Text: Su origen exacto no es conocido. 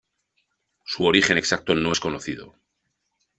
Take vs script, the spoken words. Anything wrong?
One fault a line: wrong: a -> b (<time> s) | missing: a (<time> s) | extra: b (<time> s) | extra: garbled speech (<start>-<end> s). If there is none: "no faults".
no faults